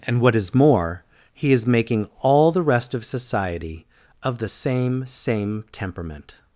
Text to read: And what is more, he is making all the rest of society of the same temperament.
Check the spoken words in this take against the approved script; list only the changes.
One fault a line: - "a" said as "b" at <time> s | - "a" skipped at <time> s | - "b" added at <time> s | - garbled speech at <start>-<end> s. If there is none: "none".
- "same" added at 5.1 s